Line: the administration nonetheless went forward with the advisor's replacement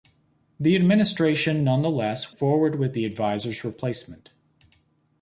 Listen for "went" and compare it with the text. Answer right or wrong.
wrong